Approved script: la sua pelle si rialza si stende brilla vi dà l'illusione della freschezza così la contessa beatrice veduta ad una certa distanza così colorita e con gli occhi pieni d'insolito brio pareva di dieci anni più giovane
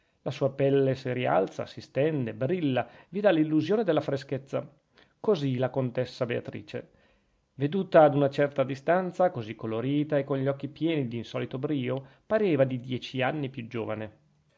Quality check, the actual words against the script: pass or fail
pass